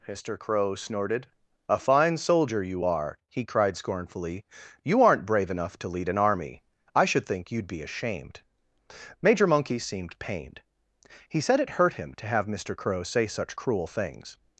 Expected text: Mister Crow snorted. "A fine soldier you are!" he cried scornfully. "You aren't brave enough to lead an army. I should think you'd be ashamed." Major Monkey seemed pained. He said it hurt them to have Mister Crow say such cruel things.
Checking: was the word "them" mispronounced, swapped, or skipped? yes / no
yes